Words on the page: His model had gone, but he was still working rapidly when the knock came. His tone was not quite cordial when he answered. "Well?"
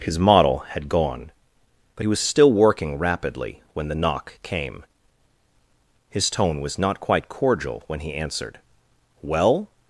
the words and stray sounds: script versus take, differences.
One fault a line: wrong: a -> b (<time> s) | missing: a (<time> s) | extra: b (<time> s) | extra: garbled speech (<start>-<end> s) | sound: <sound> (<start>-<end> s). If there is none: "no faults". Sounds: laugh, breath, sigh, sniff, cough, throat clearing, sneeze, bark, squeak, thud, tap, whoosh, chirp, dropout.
no faults